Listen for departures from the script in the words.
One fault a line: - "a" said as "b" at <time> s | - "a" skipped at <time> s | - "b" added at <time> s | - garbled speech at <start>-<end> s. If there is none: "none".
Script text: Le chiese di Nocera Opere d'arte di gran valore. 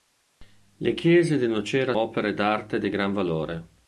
none